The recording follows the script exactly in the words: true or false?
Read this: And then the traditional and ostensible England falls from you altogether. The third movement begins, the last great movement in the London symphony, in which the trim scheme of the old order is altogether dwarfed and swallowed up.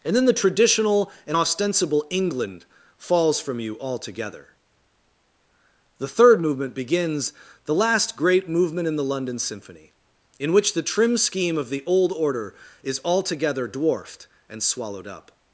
true